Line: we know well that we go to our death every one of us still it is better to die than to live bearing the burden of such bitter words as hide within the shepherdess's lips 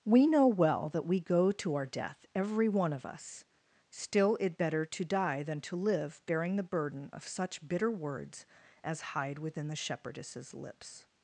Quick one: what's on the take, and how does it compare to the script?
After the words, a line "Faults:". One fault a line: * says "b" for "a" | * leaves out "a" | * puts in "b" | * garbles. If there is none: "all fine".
we know well that we go to our death every one of us still it better to die than to live bearing the burden of such bitter words as hide within the shepherdess's lips
Faults:
* leaves out "is"